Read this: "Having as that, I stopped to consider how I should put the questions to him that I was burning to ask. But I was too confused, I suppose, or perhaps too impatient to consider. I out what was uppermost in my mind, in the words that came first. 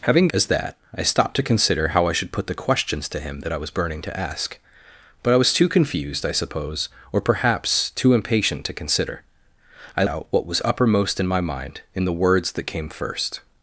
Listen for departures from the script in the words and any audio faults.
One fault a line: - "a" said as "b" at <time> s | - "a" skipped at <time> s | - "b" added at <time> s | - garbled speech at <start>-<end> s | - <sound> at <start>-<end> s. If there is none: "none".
none